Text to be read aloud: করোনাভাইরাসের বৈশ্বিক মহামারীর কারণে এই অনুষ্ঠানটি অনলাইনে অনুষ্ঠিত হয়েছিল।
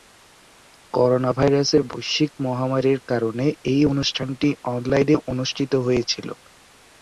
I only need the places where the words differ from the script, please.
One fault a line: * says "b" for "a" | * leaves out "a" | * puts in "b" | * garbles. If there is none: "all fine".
all fine